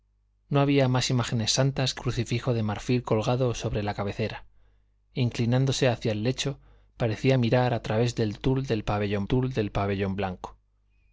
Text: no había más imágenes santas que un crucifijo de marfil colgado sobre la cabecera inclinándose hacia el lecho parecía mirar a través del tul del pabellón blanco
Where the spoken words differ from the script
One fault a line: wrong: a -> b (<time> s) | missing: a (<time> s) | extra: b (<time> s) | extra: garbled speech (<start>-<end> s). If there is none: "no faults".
missing: un (2.0 s)
extra: tul del pabellón (9.2 s)